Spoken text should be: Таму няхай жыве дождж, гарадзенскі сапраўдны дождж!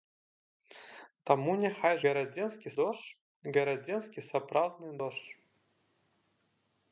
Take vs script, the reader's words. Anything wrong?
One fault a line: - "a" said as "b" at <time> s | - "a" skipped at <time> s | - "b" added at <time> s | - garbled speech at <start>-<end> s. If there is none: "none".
- "жыве" said as "гарадзенскі" at 2.1 s